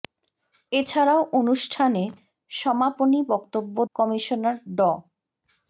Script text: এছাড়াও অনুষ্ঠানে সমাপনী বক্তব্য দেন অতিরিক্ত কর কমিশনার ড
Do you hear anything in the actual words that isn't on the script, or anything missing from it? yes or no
yes